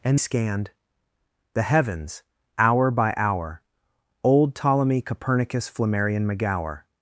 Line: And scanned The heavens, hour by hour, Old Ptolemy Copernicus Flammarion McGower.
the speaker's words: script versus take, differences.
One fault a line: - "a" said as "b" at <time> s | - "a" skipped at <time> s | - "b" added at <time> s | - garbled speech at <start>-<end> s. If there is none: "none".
none